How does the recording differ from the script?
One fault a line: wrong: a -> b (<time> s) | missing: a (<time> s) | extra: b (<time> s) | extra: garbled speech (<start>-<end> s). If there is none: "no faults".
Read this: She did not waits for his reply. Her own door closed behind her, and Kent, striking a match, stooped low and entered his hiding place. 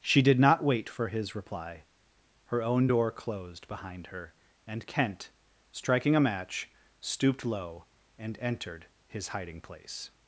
wrong: waits -> wait (0.6 s)